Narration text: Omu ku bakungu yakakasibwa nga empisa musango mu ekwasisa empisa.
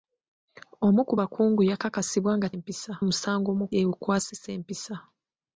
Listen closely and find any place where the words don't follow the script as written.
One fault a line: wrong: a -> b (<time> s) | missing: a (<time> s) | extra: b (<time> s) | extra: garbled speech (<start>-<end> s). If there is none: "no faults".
no faults